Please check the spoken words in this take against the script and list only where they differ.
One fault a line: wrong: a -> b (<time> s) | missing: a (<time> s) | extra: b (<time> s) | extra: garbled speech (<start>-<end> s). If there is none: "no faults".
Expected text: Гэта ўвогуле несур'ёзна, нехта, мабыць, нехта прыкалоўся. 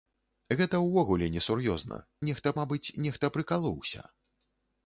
no faults